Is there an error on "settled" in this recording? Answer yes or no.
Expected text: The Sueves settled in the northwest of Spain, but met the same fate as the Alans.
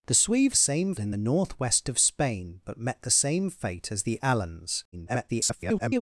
yes